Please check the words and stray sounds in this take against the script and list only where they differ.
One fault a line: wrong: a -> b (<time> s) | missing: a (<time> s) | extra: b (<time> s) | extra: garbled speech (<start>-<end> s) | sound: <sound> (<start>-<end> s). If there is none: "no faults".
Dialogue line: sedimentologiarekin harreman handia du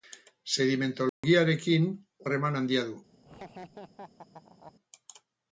sound: dropout (1.1-1.2 s)
sound: laugh (3.2-4.7 s)